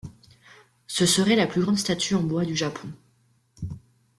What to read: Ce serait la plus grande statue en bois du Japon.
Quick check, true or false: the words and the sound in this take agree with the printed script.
true